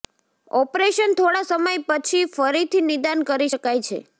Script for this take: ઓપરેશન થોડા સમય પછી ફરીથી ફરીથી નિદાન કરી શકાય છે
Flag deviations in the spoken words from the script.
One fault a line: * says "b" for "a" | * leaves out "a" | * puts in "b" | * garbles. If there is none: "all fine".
* leaves out "ફરીથી"